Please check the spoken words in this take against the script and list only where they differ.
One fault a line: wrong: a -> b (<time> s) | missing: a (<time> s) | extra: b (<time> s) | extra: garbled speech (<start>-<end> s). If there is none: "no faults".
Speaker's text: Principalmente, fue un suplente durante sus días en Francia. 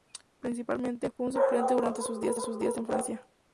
extra: sus días (2.4 s)